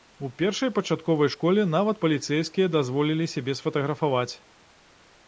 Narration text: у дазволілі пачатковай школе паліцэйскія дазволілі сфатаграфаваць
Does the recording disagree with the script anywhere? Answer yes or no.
yes